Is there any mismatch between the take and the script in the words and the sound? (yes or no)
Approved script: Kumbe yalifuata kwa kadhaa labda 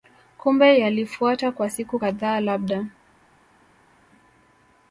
yes